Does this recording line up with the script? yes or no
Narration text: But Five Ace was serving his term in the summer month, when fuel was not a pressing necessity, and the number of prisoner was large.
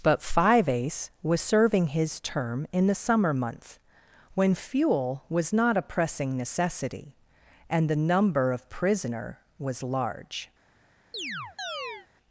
yes